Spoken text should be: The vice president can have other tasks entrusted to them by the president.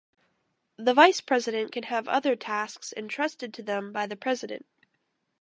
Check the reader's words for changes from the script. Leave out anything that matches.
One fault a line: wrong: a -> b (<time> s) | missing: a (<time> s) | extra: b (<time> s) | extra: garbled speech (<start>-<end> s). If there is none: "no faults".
no faults